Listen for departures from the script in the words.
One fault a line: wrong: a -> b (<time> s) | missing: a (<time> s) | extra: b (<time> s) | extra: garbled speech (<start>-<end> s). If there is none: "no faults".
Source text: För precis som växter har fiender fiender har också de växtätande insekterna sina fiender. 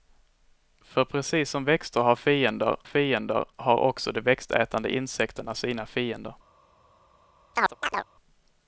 no faults